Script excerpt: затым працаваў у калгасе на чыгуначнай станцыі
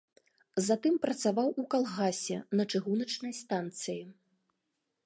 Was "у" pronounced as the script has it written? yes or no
yes